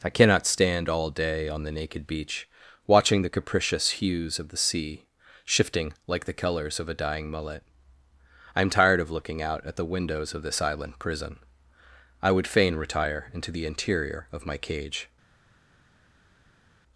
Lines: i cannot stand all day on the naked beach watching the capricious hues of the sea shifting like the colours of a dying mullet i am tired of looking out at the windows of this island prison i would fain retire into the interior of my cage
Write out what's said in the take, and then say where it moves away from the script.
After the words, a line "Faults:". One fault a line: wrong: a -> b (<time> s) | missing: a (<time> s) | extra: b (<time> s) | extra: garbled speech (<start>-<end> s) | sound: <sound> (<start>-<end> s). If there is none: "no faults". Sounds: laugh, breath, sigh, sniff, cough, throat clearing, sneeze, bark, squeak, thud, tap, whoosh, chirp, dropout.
i cannot stand all day on the naked beach watching the capricious hues of the sea shifting like the colours of a dying mullet i am tired of looking out at the windows of this island prison i would fain retire into the interior of my cage
Faults:
no faults